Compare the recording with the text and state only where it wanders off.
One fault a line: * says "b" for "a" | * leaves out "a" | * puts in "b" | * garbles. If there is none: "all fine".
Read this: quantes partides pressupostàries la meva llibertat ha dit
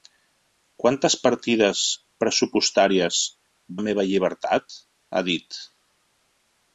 all fine